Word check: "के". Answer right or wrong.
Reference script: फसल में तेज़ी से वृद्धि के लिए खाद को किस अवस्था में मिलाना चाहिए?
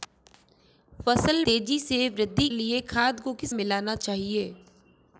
wrong